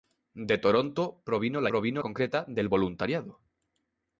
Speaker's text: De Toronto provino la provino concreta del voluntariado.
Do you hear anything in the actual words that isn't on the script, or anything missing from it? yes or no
no